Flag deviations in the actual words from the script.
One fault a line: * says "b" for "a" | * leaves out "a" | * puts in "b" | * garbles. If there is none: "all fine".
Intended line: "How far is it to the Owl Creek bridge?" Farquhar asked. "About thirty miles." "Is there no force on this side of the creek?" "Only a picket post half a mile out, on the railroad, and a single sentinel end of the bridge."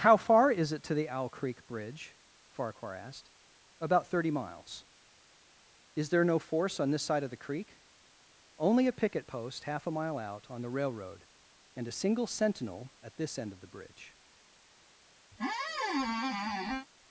* puts in "at this"